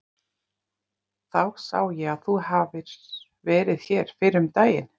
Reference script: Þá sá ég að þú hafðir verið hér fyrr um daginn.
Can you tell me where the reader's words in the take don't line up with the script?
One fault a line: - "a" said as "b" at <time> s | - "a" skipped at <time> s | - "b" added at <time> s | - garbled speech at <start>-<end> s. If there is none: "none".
none